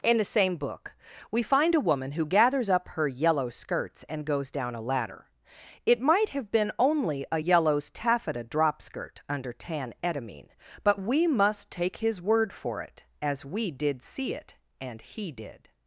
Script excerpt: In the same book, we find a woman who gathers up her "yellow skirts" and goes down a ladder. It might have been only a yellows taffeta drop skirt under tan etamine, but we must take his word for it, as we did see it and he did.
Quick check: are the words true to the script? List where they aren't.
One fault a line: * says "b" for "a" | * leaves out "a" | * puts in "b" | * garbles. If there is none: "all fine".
all fine